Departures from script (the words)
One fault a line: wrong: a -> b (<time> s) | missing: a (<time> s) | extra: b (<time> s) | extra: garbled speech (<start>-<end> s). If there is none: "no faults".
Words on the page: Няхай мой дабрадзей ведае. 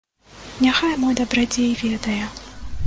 no faults